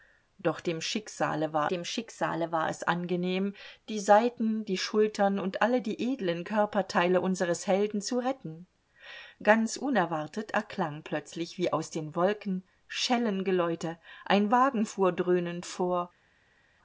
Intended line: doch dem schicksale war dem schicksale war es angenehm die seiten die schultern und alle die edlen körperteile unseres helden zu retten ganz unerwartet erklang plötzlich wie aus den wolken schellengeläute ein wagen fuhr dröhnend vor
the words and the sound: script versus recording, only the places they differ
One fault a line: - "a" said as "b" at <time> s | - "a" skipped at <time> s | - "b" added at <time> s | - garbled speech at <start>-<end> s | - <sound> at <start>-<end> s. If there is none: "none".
none